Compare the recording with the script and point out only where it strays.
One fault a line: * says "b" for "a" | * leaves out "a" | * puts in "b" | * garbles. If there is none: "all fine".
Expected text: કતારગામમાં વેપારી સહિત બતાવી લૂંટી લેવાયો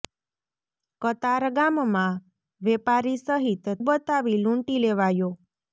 all fine